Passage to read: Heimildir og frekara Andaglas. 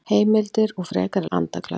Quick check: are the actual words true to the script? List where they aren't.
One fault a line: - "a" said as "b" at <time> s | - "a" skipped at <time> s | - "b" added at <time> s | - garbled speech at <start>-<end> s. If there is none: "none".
none